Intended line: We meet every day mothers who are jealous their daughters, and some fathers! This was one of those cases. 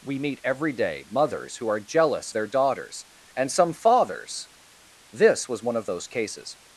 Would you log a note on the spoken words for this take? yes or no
no